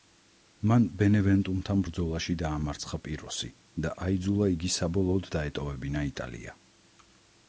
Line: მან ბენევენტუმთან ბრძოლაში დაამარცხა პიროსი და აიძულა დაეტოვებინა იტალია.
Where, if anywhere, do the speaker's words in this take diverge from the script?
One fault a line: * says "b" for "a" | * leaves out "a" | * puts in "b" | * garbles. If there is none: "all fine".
* puts in "იგი საბოლოოდ"